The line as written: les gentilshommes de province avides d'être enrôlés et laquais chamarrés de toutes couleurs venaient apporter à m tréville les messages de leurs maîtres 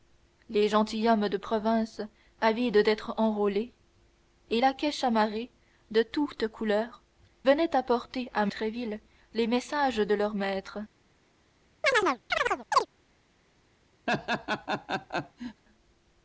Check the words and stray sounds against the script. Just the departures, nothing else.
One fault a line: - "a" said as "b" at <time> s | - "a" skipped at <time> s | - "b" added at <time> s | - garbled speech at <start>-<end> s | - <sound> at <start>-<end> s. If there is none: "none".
- chirp at 11.8-12.9 s
- laugh at 14.1-15.6 s